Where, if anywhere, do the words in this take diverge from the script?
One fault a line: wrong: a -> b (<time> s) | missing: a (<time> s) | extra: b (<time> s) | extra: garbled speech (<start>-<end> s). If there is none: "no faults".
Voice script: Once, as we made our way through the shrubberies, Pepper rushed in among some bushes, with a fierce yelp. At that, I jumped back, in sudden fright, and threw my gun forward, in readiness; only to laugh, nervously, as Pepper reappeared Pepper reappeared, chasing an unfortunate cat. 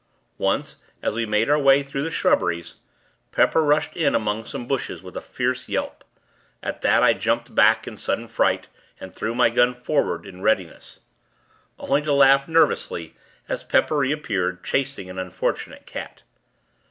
missing: Pepper reappeared (14.6 s)